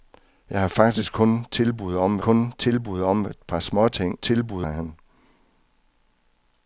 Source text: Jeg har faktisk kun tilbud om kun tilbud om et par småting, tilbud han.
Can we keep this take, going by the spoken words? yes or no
yes